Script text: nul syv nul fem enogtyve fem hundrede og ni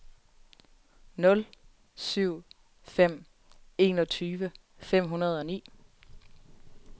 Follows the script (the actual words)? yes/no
no